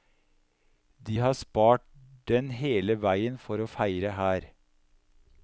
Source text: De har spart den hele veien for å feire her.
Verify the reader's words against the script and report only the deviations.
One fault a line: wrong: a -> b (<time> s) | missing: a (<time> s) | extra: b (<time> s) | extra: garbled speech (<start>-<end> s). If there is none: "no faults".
no faults